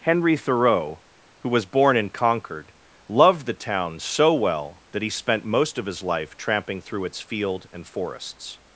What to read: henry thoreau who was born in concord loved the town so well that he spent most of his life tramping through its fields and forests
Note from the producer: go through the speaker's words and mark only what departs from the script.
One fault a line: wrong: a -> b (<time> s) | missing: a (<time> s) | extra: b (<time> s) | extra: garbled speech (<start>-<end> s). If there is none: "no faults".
wrong: fields -> field (7.2 s)